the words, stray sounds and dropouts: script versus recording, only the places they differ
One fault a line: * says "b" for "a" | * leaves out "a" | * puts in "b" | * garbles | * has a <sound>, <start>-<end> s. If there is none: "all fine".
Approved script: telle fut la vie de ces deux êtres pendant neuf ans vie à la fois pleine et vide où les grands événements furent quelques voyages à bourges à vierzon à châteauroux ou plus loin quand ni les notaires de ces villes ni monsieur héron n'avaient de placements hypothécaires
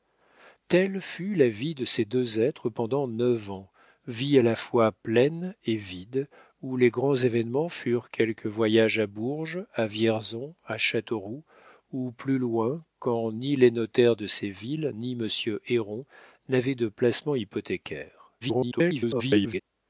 * garbles